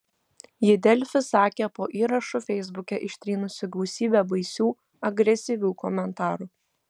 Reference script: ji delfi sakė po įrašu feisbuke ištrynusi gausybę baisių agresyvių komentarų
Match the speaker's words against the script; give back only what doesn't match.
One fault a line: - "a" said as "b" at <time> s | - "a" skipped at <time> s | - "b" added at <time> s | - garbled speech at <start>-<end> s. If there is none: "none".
none